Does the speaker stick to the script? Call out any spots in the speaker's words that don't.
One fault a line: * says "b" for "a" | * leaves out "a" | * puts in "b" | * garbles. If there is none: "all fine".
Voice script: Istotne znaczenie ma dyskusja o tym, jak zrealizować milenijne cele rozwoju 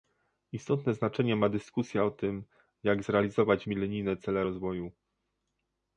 all fine